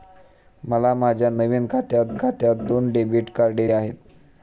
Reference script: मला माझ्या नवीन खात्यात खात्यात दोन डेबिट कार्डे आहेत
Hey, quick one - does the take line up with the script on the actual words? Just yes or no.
yes